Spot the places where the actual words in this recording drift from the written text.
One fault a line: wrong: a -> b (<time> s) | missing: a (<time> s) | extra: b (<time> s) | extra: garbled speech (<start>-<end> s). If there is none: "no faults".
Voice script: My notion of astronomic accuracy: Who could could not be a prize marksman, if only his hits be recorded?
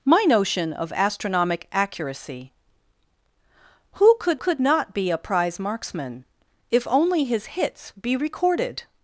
no faults